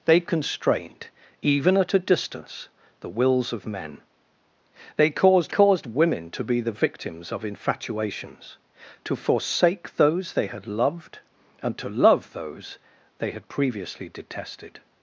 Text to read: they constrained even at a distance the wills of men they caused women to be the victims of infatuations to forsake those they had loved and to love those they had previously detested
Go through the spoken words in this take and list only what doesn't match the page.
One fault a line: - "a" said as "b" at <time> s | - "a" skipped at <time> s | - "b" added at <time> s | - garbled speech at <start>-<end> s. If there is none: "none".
- "caused" added at 5.5 s